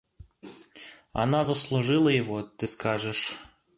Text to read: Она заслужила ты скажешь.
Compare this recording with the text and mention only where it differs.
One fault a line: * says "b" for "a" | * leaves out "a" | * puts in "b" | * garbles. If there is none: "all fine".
* puts in "его"